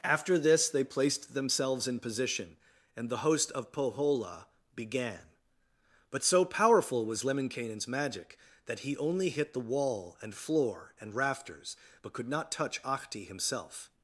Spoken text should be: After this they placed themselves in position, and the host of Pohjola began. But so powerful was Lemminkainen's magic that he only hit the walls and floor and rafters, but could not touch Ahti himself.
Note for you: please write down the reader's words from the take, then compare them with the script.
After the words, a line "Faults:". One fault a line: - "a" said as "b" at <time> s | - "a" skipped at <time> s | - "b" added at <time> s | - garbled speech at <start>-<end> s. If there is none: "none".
After this they placed themselves in position, and the host of Pohjola began. But so powerful was Lemminkainen's magic that he only hit the wall and floor and rafters, but could not touch Ahti himself.
Faults:
- "walls" said as "wall" at 9.6 s